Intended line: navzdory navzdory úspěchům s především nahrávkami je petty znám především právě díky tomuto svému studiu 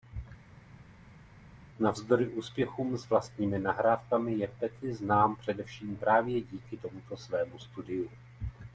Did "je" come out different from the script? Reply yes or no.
no